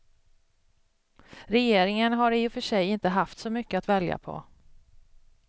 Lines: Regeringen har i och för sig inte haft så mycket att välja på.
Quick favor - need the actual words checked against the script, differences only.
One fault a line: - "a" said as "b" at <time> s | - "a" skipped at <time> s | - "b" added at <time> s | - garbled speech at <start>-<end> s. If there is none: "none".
none